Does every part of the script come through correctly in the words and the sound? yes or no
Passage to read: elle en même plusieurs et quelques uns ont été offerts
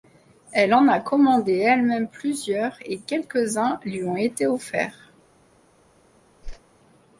no